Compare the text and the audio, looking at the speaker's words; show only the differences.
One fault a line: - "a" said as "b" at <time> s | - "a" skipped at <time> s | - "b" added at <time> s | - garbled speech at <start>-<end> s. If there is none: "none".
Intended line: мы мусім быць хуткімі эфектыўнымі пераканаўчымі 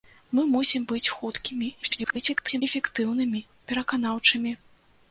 - garbled speech at 1.8-2.6 s